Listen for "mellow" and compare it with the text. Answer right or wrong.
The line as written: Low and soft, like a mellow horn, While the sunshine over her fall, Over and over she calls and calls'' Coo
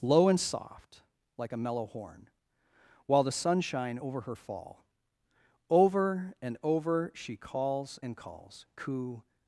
right